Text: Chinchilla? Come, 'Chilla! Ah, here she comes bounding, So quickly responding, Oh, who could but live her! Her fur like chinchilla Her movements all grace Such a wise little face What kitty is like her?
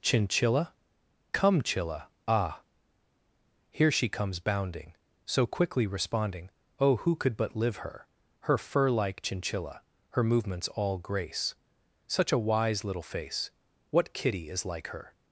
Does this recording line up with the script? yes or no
yes